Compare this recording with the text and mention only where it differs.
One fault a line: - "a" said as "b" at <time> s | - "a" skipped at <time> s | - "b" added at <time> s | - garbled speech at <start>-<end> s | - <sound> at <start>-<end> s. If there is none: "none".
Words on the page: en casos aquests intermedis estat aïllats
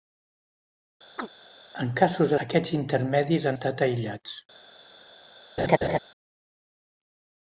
- chirp at 1.2-1.3 s
- laugh at 5.6-6.0 s